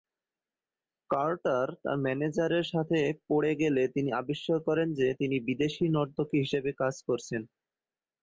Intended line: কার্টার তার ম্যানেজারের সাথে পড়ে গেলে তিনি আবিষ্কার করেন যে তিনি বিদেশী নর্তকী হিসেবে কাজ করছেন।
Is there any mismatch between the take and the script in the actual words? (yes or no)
no